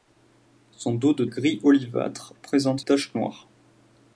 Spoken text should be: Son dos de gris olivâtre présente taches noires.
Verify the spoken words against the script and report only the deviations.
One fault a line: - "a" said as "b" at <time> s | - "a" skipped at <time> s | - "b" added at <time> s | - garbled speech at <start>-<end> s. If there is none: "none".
none